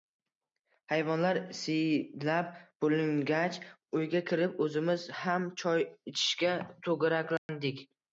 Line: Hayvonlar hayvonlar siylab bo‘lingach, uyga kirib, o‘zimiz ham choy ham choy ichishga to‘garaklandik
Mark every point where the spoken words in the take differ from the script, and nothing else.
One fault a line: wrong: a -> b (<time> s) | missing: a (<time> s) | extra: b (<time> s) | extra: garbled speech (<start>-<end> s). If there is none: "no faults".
missing: hayvonlar (1.4 s)
missing: ham choy (5.9 s)